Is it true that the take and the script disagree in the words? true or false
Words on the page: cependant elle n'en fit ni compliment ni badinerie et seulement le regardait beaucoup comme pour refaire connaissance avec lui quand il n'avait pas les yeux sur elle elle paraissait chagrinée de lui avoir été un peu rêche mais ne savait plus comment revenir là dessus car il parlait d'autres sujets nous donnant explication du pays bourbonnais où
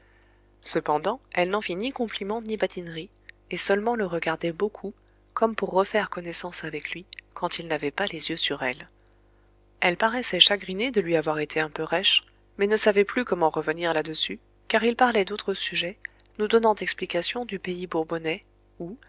false